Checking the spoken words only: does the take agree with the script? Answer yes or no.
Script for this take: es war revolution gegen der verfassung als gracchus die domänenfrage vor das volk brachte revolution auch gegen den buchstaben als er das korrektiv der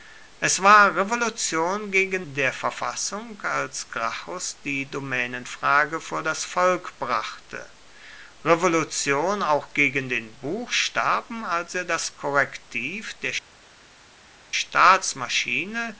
yes